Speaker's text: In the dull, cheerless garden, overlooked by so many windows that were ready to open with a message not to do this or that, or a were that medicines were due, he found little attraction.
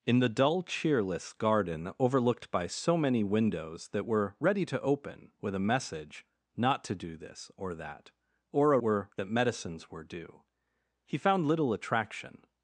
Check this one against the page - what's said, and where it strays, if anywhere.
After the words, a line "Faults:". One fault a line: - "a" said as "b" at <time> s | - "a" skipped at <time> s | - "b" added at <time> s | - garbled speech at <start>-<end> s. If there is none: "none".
In the dull, cheerless garden, overlooked by so many windows that were ready to open with a message not to do this or that, or a were that medicines were due, he found little attraction.
Faults:
none